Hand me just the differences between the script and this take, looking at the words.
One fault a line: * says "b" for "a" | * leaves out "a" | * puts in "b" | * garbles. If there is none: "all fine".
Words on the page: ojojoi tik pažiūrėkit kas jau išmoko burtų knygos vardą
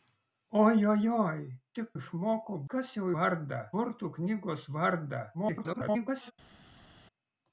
* says "išmoko" for "pažiūrėkit"
* says "vardą" for "išmoko"
* garbles